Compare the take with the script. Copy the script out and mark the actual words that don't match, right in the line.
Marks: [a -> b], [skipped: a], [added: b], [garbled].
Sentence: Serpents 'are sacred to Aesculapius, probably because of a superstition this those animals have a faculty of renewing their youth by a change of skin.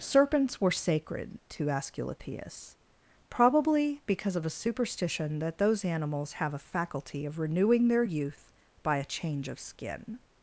Serpents ['are -> were] sacred to Aesculapius, probably because of a superstition [this -> that] those animals have a faculty of renewing their youth by a change of skin.